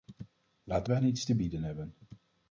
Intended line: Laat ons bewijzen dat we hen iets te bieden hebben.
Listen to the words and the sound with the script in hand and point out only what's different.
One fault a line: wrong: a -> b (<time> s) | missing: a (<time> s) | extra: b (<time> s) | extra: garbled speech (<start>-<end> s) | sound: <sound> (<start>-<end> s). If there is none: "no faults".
missing: ons bewijzen dat (0.9 s)